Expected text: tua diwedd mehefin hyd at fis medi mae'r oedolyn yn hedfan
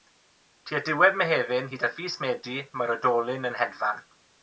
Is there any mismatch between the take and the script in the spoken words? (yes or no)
no